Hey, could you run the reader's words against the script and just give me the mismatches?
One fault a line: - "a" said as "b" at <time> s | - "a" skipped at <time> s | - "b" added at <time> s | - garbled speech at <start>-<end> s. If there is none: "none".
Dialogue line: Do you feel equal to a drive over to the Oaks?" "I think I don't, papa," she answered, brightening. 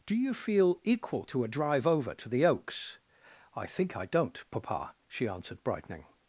none